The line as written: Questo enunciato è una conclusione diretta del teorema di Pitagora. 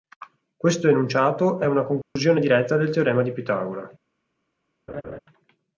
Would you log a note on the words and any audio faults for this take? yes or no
yes